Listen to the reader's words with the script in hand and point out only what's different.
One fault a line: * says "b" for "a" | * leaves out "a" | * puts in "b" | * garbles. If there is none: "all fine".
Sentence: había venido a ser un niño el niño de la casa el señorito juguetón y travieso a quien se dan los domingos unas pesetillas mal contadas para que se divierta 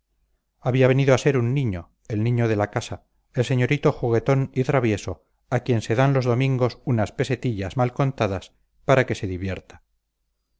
all fine